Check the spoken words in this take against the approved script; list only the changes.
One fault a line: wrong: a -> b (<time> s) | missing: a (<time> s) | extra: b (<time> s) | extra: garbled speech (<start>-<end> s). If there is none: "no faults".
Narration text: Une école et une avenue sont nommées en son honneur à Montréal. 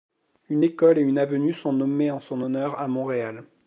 no faults